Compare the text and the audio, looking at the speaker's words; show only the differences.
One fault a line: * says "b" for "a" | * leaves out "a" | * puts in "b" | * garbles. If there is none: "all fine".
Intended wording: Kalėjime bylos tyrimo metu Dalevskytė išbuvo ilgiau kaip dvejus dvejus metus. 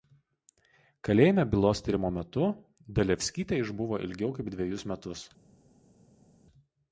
* leaves out "dvejus"